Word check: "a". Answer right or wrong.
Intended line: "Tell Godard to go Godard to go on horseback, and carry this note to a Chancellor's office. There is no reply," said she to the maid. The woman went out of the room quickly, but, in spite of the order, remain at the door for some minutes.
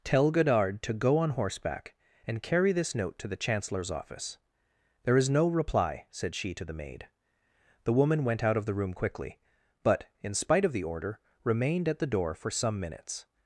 wrong